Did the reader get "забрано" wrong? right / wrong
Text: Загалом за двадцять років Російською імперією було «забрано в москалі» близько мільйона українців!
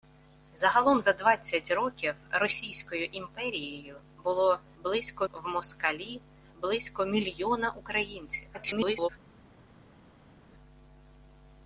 wrong